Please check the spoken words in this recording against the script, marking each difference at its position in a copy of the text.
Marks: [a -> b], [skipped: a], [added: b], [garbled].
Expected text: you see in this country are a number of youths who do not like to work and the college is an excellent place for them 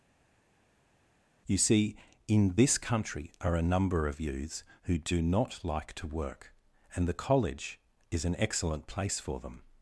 you see in this country are a number of youths who do not like to work and the college is an excellent place for them